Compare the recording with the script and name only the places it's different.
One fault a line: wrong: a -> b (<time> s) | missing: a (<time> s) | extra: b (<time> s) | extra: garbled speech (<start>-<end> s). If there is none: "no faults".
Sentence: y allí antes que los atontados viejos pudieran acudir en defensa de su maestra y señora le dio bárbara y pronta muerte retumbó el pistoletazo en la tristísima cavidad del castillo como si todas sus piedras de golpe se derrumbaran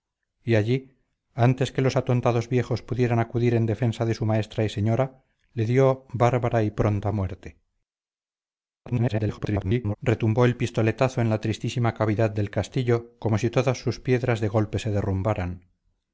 extra: garbled speech (8.9-10.0 s)